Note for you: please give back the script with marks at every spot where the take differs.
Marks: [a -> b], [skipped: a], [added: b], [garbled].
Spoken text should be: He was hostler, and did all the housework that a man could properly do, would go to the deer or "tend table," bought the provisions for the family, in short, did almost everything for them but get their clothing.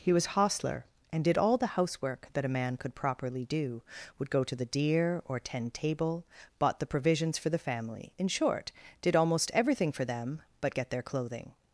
He was hostler, and did all the housework that a man could properly do, would go to the deer or "tend table," bought the provisions for the family, in short, did almost everything for them but get their clothing.